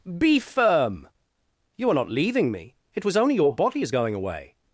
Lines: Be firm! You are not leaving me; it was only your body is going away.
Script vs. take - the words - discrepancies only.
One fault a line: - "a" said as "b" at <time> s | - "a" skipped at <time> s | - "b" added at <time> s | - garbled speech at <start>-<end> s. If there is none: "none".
none